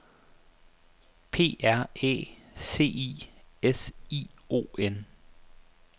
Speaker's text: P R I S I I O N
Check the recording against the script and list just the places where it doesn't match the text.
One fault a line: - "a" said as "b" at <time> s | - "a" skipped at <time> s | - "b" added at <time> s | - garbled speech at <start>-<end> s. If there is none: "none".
- "Æ C" added at 1.9 s
- "I" skipped at 4.3 s